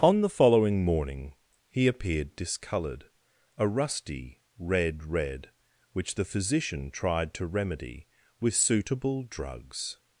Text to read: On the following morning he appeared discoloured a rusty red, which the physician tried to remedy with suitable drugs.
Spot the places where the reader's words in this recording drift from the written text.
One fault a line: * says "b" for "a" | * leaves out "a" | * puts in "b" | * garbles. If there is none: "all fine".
* puts in "red"